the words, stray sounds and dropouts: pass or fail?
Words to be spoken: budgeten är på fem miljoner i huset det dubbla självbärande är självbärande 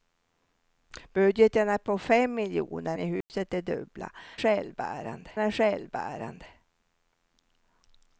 fail